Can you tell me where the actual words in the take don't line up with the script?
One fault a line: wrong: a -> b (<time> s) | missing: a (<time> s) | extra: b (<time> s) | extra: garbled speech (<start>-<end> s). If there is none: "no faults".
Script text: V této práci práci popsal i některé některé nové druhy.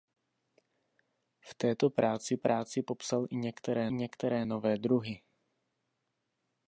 no faults